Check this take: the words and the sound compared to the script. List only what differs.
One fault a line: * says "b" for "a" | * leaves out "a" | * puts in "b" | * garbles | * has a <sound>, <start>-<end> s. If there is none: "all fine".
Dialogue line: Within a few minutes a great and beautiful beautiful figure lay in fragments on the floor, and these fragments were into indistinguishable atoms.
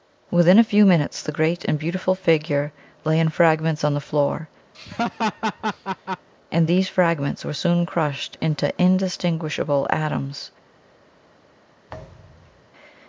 * says "the" for "a"
* leaves out "beautiful"
* has a laugh, 4.7-6.3 s
* puts in "soon crushed"
* has a thud, 11.9-12.7 s